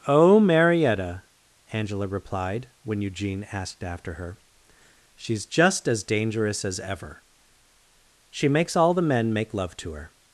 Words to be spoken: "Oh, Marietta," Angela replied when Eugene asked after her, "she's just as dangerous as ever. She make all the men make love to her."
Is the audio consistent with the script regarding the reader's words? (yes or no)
no